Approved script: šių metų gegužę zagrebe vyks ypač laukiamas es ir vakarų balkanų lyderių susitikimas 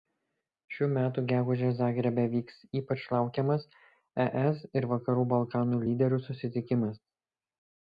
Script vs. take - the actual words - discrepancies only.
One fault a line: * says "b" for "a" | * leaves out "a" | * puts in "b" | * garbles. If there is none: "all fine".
all fine